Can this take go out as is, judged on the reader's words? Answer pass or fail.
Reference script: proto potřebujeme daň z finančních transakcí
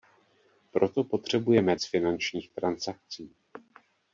fail